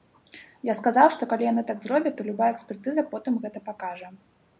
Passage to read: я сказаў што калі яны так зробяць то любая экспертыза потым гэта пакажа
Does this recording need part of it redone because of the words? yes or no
no